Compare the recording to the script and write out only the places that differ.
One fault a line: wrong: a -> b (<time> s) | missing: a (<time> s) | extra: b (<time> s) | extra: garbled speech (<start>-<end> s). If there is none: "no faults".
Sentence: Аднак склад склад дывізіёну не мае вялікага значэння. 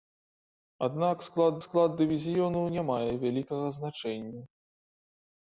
no faults